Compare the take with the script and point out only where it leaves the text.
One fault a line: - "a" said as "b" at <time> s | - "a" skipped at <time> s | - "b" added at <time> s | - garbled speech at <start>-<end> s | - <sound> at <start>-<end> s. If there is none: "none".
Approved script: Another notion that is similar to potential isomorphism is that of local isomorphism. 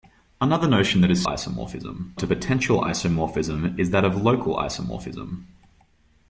- "similar" said as "isomorphism" at 1.2 s